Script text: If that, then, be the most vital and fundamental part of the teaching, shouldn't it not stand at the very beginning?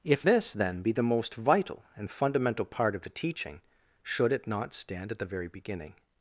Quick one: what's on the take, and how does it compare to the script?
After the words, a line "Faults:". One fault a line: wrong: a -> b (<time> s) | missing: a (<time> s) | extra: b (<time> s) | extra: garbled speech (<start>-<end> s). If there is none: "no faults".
If this, then, be the most vital and fundamental part of the teaching, should it not stand at the very beginning?
Faults:
wrong: that -> this (0.2 s)
wrong: shouldn't -> should (4.0 s)